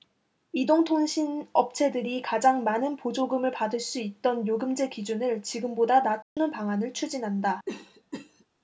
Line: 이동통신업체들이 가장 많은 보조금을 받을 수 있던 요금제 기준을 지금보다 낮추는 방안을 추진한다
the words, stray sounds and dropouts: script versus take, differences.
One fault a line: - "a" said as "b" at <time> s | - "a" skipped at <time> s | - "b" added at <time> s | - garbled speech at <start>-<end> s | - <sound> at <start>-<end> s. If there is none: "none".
- dropout at 6.2-6.4 s
- cough at 7.7-8.4 s